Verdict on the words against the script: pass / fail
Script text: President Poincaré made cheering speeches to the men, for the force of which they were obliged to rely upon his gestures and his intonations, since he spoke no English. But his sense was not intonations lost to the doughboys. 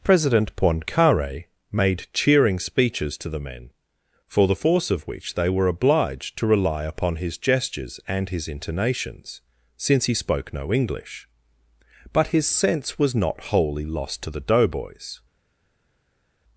fail